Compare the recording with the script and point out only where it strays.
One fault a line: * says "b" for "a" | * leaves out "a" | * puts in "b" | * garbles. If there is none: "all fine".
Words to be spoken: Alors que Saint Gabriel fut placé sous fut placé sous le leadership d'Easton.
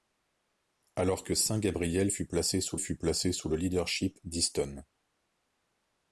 all fine